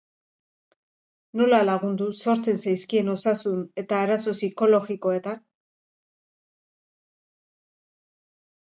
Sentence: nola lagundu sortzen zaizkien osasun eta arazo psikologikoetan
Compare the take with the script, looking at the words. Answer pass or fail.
pass